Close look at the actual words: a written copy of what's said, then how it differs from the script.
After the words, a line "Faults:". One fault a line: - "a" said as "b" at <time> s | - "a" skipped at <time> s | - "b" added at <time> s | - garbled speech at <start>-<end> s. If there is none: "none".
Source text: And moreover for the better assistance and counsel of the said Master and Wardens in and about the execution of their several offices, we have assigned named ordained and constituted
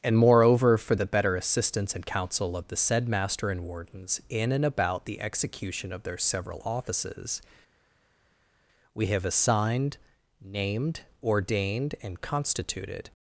And moreover for the better assistance and counsel of the said Master and Wardens in and about the execution of their several offices, we have assigned named ordained and constituted
Faults:
none